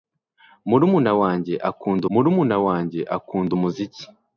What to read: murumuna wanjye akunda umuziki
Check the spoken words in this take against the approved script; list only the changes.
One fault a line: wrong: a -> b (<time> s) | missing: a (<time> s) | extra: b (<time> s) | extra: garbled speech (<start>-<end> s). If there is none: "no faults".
extra: murumuna wanjye akunda (2.1 s)